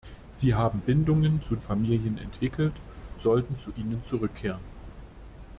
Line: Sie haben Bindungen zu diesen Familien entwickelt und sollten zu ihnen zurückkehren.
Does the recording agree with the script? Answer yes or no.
no